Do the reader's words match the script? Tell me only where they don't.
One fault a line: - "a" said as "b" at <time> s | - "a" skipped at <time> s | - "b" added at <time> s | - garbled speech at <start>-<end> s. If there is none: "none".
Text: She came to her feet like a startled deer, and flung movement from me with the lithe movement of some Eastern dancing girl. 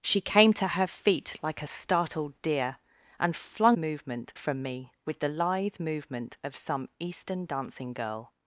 none